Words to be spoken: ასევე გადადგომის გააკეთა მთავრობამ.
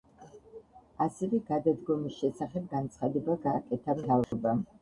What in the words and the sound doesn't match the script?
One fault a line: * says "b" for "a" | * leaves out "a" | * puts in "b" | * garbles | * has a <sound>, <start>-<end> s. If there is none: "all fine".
* puts in "შესახებ განცხადება"
* has a dropout, 4.2-4.3 s